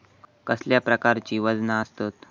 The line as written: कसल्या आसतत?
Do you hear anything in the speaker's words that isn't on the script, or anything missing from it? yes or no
yes